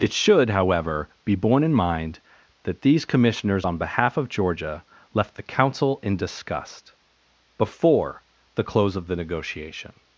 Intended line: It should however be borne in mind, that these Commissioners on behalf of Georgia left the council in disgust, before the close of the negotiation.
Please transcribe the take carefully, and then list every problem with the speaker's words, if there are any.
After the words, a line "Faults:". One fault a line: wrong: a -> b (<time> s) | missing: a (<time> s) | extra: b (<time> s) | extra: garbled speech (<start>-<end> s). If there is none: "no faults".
It should however be borne in mind, that these Commissioners on behalf of Georgia left the council in disgust, before the close of the negotiation.
Faults:
no faults